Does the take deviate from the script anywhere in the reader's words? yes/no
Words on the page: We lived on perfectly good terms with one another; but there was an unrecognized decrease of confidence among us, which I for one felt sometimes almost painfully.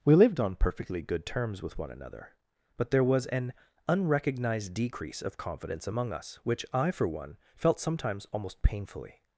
no